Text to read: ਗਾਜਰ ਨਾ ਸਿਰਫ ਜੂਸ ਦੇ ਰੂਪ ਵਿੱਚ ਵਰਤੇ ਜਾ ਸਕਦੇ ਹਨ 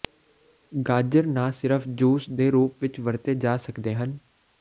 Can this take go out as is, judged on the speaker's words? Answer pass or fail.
pass